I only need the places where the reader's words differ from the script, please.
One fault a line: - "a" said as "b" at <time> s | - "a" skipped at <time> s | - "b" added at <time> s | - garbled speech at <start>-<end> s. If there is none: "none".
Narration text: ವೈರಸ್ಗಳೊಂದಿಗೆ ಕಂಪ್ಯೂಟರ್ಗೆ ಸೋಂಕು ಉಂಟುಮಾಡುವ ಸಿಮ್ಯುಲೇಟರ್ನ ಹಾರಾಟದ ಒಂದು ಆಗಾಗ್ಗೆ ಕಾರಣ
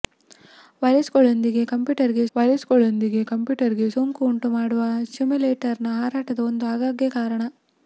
- "ವೈರಸ್ಗಳೊಂದಿಗೆ ಕಂಪ್ಯೂಟರ್ಗೆ" added at 2.3 s